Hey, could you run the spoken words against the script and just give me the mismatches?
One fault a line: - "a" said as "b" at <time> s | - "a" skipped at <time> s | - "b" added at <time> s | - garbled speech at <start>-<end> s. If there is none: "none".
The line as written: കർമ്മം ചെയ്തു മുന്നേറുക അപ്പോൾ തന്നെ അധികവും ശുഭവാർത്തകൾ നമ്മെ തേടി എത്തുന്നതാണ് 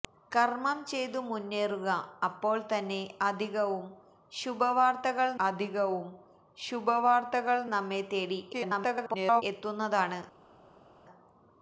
- "അധികവും ശുഭവാർത്തകൾ" added at 5.4 s
- garbled speech at 8.5-9.4 s